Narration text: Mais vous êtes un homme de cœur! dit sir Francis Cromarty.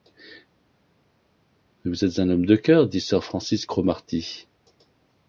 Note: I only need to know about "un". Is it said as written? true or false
true